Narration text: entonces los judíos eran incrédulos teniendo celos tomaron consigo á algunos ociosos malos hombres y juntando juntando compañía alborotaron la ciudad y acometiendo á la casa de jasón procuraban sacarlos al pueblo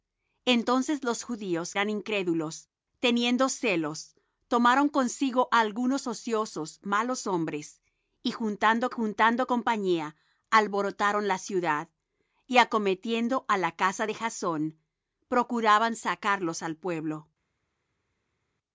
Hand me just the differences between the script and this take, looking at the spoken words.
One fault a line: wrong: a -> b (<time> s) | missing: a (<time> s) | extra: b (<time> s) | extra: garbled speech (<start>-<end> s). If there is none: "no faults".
no faults